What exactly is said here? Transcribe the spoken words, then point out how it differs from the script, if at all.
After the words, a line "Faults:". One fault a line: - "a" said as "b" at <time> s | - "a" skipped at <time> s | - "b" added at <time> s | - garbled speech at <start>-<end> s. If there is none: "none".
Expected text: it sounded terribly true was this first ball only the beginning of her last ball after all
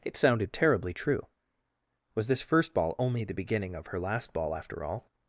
it sounded terribly true was this first ball only the beginning of her last ball after all
Faults:
none